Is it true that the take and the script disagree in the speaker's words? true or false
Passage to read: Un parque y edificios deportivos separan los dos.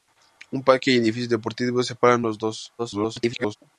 true